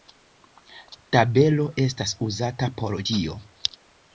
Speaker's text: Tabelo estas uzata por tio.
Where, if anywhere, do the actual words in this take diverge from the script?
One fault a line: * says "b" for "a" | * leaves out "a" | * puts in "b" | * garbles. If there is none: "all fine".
all fine